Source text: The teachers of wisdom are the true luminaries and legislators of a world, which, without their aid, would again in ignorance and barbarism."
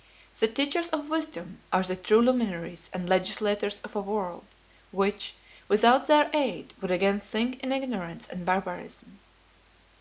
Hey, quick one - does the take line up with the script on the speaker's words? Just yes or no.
no